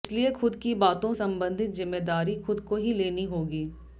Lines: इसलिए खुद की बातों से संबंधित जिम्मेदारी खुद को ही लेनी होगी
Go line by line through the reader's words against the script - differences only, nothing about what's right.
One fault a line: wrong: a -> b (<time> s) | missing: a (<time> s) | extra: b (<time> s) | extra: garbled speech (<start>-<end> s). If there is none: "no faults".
missing: से (1.1 s)